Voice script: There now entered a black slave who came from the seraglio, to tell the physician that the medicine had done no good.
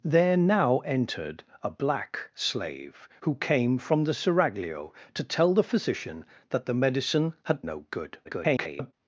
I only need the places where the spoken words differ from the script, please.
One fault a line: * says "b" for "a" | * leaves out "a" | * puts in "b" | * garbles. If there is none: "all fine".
* leaves out "done"
* garbles